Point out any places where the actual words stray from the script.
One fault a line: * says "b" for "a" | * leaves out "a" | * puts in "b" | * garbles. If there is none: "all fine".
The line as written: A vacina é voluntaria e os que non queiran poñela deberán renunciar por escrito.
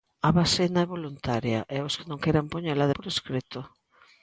* leaves out "deberán renunciar"